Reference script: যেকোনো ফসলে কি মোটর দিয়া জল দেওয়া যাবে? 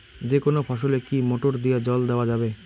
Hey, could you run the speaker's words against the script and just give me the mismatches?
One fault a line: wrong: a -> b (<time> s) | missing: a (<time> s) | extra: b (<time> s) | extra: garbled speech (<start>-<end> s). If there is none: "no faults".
no faults